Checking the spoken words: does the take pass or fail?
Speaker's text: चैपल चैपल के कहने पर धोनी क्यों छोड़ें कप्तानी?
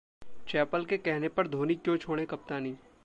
fail